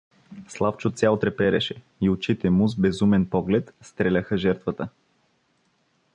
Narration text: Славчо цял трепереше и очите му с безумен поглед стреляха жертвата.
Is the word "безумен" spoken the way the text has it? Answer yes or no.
yes